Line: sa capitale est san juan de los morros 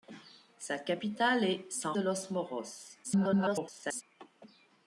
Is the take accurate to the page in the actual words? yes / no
no